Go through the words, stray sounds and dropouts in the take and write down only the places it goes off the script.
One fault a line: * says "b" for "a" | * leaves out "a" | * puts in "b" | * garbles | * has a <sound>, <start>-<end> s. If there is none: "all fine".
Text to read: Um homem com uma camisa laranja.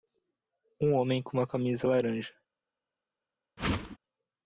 * has a whoosh, 3.6-4.0 s